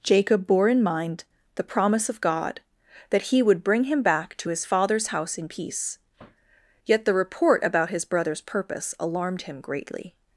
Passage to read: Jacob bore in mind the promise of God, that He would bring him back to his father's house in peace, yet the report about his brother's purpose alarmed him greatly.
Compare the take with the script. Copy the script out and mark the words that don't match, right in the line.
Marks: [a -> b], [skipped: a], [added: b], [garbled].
Jacob bore in mind the promise of God, that He would bring him back to his father's house in peace, yet the report about his brother's purpose alarmed him greatly.